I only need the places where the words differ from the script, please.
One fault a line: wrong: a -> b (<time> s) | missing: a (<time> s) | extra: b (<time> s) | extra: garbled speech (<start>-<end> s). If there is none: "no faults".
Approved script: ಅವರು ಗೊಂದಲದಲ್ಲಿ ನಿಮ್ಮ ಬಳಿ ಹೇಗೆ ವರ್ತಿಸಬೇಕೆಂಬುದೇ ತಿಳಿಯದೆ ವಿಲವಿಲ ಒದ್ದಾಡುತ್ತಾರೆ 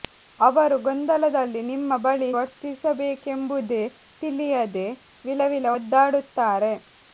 missing: ಹೇಗೆ (2.3 s)